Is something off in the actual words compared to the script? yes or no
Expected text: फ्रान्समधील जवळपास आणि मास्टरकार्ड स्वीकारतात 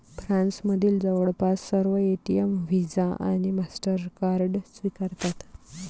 yes